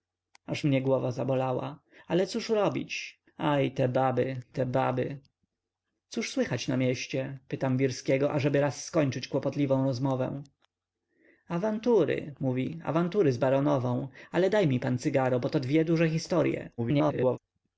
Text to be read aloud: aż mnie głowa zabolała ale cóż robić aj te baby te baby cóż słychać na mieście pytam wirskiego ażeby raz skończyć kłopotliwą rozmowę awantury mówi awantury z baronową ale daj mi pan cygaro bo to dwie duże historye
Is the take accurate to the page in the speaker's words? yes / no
no